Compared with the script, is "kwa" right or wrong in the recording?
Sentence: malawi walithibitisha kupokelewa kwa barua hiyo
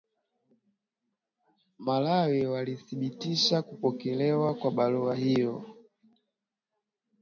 right